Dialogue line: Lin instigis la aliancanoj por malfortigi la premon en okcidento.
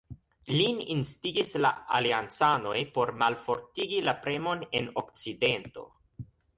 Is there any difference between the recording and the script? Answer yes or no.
no